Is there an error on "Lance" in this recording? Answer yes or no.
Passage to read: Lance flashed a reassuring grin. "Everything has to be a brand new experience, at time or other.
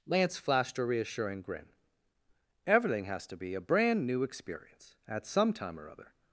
no